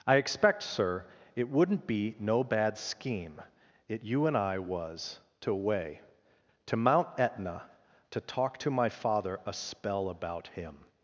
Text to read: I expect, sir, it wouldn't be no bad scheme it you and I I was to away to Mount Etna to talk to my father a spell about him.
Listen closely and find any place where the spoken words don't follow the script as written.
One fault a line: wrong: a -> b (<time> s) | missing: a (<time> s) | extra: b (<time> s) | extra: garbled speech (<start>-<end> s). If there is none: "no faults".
missing: I (4.6 s)